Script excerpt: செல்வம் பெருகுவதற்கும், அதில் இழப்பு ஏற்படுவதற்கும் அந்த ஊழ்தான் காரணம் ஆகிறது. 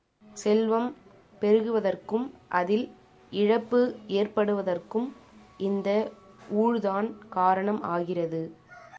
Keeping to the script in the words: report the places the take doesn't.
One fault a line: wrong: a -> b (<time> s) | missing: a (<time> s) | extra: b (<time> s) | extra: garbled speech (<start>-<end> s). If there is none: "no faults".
wrong: அந்த -> இந்த (5.6 s)